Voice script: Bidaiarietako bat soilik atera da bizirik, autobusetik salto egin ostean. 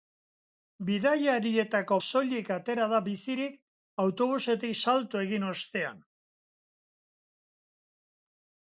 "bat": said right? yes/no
no